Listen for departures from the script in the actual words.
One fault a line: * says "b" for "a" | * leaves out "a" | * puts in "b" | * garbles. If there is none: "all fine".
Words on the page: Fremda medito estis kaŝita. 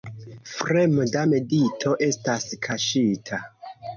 * says "estas" for "estis"